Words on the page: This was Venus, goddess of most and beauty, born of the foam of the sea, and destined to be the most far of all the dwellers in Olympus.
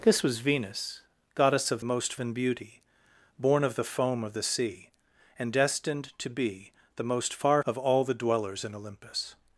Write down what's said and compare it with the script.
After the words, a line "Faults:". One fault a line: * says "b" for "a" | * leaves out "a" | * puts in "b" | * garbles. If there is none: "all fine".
This was Venus, goddess of most and beauty, born of the foam of the sea, and destined to be the most far of all the dwellers in Olympus.
Faults:
all fine